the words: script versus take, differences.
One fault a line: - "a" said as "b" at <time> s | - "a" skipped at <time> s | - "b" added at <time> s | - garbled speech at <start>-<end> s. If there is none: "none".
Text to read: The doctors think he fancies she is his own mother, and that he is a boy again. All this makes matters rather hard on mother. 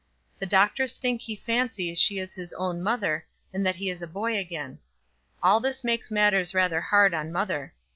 none